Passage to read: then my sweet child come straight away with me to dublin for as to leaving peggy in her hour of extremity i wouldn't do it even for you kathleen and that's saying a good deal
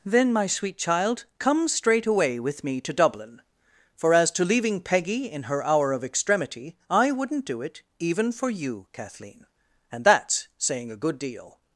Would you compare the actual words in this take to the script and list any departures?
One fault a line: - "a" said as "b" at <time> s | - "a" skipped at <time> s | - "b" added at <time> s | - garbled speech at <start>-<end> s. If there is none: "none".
none